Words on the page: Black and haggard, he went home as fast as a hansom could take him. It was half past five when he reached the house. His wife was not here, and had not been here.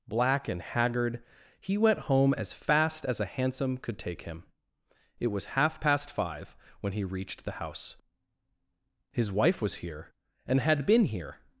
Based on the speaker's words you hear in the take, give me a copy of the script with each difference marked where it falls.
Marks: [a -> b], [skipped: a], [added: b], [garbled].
Black and haggard, he went home as fast as a hansom could take him. It was half past five when he reached the house. His wife was [skipped: not] here, and had [skipped: not] been here.